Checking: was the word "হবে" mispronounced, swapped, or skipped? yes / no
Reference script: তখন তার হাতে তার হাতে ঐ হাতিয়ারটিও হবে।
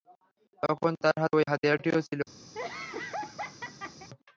yes